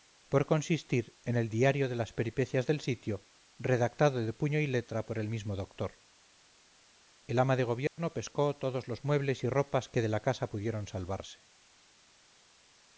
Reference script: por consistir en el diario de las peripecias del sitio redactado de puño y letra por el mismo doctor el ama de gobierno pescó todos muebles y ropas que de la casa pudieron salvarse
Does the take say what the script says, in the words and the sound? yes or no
no